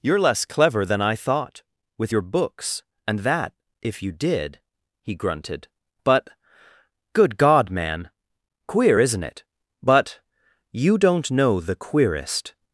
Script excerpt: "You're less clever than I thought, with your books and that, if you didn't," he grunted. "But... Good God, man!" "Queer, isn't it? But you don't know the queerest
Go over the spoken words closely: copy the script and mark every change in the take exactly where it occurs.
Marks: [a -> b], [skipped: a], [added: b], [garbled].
"You're less clever than I thought, with your books and that, if you [didn't," -> did] he grunted. "But... Good God, man!" "Queer, isn't it? But you don't know the queerest